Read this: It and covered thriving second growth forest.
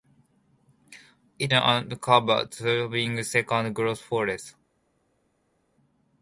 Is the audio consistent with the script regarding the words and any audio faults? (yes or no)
yes